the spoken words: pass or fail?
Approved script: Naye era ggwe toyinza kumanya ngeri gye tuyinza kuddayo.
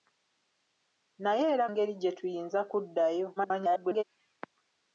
fail